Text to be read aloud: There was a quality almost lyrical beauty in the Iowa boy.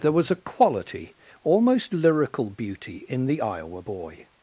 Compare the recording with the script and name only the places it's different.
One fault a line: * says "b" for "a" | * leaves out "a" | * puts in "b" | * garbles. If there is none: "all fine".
all fine